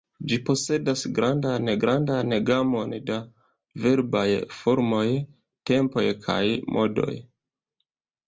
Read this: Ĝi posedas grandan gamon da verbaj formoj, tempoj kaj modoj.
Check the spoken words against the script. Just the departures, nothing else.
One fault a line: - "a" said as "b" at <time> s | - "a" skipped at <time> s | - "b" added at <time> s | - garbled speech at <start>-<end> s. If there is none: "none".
- "grandan" added at 1.8 s